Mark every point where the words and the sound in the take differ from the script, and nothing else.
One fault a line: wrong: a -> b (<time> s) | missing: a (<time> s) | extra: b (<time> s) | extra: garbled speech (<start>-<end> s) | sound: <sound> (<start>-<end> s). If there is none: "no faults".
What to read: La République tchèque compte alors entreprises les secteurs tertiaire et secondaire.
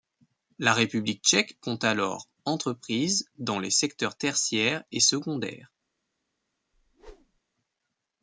extra: dans (3.4 s)
sound: whoosh (6.7-7.4 s)